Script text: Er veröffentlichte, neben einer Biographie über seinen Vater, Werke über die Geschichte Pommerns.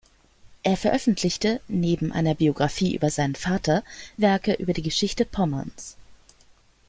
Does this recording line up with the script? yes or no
yes